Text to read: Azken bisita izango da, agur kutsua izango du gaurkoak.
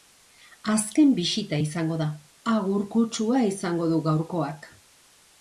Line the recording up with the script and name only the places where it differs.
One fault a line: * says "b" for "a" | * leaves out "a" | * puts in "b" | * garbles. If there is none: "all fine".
all fine